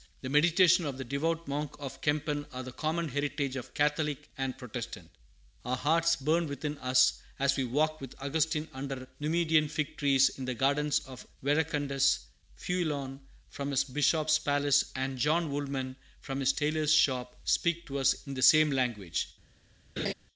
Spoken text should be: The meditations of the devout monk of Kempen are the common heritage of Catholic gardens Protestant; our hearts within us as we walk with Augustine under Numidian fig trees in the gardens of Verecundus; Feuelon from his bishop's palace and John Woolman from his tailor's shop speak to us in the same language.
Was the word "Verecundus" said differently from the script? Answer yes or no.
no